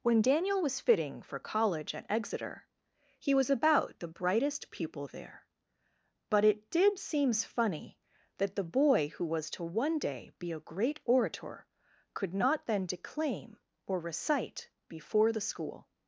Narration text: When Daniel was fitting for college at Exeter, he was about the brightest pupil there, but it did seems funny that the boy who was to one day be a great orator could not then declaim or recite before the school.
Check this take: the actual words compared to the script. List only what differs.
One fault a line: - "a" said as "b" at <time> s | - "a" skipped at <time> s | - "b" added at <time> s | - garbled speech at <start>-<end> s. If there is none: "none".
none